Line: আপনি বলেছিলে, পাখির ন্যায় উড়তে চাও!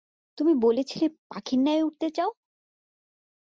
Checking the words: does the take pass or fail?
fail